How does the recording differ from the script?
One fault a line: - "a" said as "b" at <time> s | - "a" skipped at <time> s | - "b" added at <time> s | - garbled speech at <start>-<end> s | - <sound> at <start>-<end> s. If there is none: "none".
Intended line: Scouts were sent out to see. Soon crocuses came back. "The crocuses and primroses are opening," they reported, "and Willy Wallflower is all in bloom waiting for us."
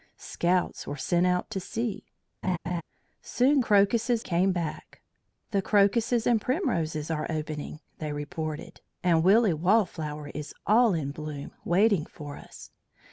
- laugh at 2.4-2.8 s